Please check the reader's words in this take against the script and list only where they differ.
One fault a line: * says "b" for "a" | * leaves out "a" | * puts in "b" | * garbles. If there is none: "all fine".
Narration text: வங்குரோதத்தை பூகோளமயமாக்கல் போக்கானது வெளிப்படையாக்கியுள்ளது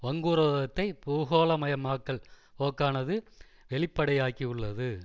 all fine